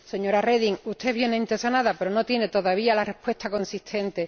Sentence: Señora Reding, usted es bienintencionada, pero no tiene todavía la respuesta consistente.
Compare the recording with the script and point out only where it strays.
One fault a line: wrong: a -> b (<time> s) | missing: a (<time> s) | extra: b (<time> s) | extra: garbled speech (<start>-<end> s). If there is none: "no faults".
no faults